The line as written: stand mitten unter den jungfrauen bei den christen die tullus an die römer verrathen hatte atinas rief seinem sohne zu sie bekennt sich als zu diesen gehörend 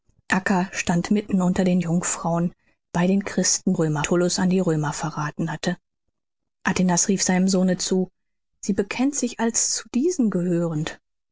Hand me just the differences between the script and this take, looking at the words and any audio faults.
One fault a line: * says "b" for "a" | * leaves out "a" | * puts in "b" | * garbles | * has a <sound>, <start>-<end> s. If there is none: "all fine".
* says "römer" for "die"